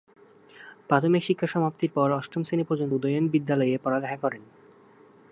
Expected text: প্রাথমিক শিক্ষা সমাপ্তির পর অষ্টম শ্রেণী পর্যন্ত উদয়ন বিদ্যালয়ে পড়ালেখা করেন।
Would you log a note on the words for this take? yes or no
no